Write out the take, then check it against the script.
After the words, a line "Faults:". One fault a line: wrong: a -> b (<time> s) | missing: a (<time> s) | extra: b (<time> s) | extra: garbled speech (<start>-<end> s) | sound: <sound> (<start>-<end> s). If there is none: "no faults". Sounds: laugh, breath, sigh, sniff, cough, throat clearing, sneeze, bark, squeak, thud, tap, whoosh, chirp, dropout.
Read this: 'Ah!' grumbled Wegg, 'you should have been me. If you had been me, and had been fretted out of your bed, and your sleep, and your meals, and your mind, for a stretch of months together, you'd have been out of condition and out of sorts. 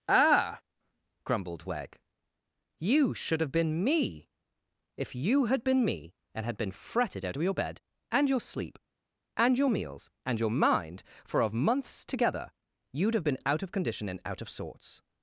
'Ah!' grumbled Wegg, 'you should have been me. If you had been me, and had been fretted out of your bed, and your sleep, and your meals, and your mind, for of months together, you'd have been out of condition and out of sorts.
Faults:
missing: a stretch (11.4 s)